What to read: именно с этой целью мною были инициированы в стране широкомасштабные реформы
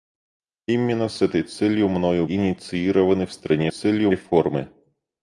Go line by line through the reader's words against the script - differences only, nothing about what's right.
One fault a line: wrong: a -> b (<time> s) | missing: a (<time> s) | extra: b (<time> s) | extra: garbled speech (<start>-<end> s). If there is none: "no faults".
missing: были (2.2 s)
wrong: широкомасштабные -> целью (3.7 s)